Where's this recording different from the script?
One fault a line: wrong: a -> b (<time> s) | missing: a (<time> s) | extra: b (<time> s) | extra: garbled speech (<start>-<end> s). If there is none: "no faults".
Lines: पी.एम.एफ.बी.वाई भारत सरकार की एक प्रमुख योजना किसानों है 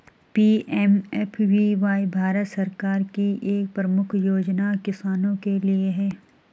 extra: के लिए (5.4 s)